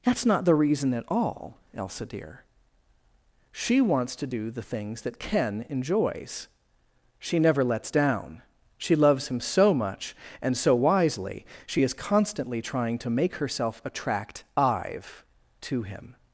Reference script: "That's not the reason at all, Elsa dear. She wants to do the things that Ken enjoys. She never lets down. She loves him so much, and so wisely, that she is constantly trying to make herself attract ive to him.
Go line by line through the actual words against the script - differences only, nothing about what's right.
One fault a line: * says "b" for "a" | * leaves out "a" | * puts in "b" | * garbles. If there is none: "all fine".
* leaves out "that"